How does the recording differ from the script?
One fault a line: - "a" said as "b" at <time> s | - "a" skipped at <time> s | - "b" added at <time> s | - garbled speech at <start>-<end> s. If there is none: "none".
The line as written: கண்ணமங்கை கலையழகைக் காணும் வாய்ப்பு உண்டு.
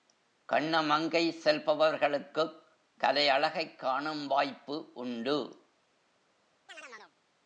- "செல்பவர்களுக்குக்" added at 1.4 s